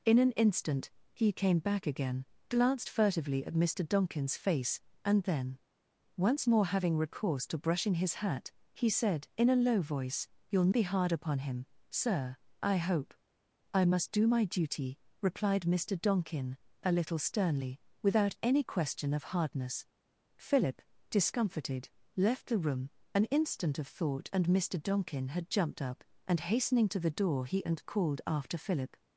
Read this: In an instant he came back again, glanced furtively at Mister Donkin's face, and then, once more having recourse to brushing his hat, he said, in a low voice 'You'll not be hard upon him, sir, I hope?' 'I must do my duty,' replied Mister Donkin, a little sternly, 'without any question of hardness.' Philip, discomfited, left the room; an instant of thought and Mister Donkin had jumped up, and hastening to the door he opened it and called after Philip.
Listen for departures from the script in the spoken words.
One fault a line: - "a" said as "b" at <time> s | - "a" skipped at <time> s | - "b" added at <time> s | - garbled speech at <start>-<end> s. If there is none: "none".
- "not" skipped at 10.7 s
- "opened it" skipped at 27.6 s